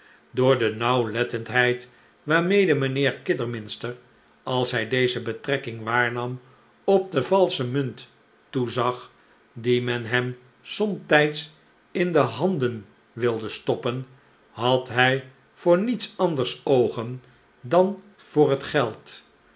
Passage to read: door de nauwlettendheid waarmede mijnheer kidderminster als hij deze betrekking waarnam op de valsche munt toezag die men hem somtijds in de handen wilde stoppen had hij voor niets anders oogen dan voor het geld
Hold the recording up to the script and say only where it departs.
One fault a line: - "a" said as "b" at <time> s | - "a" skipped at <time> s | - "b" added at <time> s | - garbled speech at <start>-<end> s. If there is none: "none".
none